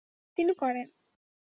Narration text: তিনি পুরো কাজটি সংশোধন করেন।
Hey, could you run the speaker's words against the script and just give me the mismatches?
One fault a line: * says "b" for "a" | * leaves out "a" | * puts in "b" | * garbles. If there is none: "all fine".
* leaves out "পুরো কাজটি সংশোধন"